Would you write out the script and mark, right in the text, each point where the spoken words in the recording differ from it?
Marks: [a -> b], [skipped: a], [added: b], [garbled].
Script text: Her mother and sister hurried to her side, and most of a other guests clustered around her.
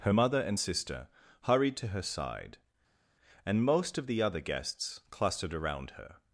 Her mother and sister hurried to her side, and most of [a -> the] other guests clustered around her.